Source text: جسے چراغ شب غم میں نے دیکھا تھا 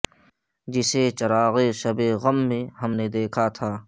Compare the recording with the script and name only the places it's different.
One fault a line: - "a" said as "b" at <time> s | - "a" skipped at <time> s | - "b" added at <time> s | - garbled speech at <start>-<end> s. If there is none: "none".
- "ہم" added at 2.8 s